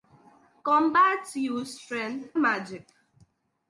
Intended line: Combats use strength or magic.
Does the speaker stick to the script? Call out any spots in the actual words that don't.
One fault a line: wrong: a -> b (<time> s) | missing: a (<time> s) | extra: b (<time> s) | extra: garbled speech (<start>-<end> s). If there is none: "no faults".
missing: or (2.3 s)